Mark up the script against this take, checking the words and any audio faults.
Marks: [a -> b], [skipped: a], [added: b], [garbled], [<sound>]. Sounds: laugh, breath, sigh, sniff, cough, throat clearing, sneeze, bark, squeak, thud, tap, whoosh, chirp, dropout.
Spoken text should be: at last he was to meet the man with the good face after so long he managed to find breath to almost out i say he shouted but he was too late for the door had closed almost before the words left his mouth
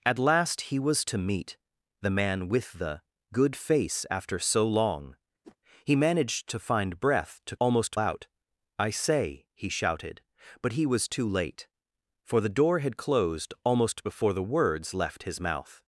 at last he was to meet the man with the good face after so long [whoosh] he managed to find breath to almost out i say he shouted but he was too late for the door had closed almost before the words left his mouth